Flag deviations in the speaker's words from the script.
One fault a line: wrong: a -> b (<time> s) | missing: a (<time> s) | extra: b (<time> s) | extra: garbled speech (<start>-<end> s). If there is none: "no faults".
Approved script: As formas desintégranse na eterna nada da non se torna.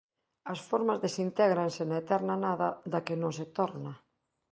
extra: que (3.0 s)